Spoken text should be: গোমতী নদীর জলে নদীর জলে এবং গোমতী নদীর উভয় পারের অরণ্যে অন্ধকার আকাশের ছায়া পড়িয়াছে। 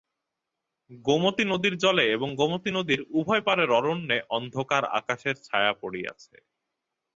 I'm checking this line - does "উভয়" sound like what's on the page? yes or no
yes